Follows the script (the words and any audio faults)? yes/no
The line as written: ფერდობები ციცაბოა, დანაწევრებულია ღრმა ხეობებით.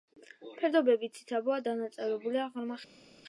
yes